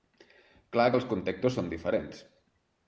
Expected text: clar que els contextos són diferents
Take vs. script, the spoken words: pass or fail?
pass